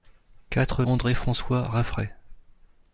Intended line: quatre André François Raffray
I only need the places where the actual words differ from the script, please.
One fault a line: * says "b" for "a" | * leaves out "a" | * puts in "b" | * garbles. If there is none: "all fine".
all fine